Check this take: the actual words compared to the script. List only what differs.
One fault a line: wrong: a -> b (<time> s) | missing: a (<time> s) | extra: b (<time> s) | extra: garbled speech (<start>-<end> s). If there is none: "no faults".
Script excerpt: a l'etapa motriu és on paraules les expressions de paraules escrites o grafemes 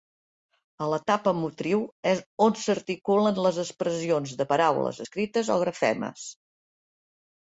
wrong: paraules -> s'articulen (2.6 s)